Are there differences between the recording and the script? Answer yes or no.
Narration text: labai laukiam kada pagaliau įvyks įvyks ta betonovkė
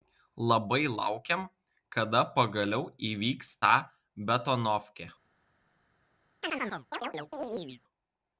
yes